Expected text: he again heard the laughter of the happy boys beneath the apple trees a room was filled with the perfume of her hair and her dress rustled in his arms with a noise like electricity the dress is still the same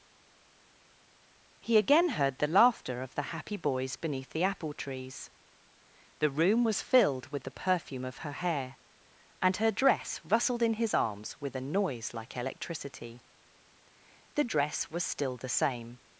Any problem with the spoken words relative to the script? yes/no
yes